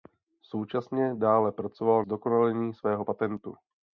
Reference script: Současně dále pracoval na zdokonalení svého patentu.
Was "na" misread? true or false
true